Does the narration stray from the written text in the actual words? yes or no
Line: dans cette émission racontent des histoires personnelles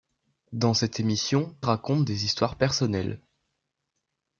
no